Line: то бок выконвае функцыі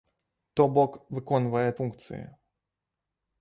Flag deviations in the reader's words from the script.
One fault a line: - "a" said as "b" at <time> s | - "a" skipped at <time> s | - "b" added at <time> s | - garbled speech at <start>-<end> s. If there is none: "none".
none